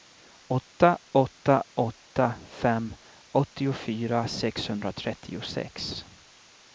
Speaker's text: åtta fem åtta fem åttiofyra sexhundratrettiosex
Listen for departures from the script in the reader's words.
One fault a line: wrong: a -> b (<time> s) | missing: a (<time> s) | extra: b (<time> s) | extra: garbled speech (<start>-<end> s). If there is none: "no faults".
wrong: fem -> åtta (1.1 s)